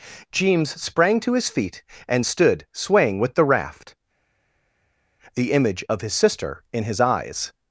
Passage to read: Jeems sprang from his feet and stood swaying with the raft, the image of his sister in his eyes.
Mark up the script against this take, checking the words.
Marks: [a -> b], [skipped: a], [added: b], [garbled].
Jeems sprang [from -> to] his feet and stood swaying with the raft, the image of his sister in his eyes.